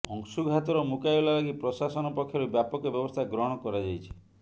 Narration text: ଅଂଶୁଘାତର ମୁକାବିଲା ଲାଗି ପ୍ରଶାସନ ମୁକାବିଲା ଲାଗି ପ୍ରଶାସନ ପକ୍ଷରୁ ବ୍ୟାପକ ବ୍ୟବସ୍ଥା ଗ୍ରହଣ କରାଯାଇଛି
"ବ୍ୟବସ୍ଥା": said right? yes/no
yes